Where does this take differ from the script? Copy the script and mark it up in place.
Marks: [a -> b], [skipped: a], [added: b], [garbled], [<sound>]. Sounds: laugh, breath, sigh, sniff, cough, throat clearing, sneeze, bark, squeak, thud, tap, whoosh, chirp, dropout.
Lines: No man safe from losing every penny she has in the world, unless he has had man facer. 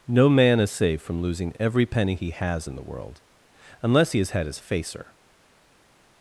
No man [added: is] safe from losing every penny [she -> he] has in the world, unless he has had [man -> his] facer.